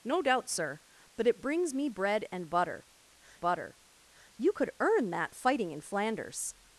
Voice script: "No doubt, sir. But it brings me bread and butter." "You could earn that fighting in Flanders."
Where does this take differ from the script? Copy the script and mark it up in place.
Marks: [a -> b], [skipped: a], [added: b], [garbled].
"No doubt, sir. But it brings me bread and butter." [added: butter] "You could earn that fighting in Flanders."